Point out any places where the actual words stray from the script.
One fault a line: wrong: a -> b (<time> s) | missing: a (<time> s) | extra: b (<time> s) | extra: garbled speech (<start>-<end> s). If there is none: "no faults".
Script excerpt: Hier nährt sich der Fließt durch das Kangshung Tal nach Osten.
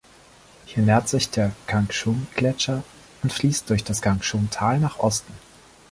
extra: Kangshung Gletscher und (1.7 s)